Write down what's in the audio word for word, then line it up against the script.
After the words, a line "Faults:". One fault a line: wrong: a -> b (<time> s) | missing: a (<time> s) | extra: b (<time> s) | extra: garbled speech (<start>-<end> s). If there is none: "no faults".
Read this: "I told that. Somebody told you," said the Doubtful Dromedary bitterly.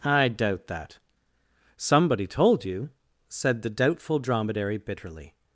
"I doubt that. Somebody told you," said the Doubtful Dromedary bitterly.
Faults:
wrong: told -> doubt (0.3 s)